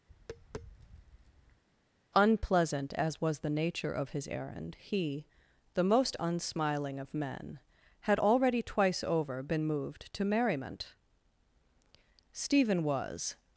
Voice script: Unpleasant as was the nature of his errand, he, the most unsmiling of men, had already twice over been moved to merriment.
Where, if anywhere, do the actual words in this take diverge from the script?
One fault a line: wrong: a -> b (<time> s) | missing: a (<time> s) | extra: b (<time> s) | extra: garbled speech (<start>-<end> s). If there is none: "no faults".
extra: Stephen was (12.3 s)